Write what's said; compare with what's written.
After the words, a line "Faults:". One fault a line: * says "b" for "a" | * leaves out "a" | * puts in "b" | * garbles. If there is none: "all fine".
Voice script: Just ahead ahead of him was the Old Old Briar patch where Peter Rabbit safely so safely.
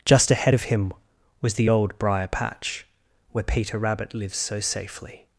Just ahead of him was the Old Briar patch where Peter Rabbit lives so safely.
Faults:
* leaves out "ahead"
* leaves out "Old"
* says "lives" for "safely"